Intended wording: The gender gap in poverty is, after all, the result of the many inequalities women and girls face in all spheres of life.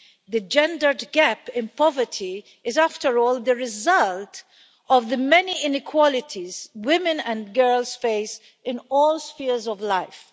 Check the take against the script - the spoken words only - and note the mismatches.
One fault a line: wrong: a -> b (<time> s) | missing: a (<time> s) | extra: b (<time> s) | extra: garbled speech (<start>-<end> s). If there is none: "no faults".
no faults